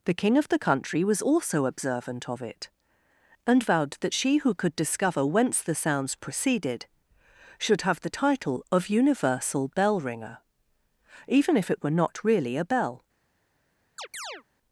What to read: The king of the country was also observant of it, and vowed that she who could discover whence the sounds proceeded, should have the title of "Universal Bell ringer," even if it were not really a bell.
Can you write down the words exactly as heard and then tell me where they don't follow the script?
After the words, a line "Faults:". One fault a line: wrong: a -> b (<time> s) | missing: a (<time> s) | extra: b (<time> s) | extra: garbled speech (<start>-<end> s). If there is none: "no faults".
The king of the country was also observant of it, and vowed that she who could discover whence the sounds proceeded, should have the title of "Universal Bell ringer," even if it were not really a bell.
Faults:
no faults